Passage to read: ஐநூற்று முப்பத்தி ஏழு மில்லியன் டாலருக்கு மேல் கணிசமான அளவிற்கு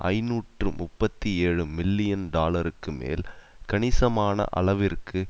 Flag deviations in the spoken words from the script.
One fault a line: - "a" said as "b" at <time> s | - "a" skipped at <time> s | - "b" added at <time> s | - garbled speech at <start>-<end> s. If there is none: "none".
none